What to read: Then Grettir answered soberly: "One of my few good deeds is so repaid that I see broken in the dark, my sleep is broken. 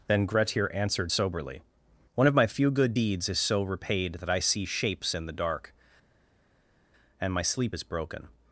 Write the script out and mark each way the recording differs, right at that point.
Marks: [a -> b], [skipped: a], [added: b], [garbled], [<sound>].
Then Grettir answered soberly: "One of my few good deeds is so repaid that I see [broken -> shapes] in the dark, [added: and] my sleep is broken.